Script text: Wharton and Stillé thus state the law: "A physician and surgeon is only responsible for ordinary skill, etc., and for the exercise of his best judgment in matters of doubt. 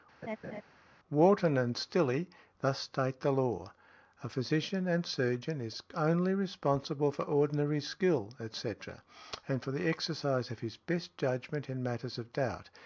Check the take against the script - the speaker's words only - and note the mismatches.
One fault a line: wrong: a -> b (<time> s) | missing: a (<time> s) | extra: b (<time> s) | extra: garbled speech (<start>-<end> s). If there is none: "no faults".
no faults